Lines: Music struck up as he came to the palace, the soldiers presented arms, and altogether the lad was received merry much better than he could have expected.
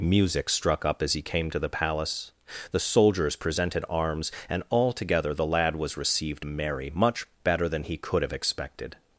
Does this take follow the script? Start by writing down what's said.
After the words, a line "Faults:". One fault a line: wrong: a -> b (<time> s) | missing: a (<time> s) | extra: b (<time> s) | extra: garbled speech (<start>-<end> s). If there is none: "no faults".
Music struck up as he came to the palace, the soldiers presented arms, and altogether the lad was received merry much better than he could have expected.
Faults:
no faults